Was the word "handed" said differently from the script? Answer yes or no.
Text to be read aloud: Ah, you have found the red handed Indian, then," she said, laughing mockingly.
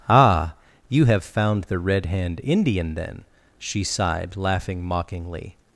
yes